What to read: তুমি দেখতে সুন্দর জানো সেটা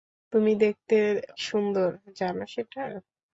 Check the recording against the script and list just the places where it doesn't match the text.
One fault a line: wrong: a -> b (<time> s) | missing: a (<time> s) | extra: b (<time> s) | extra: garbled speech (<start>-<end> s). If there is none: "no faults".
no faults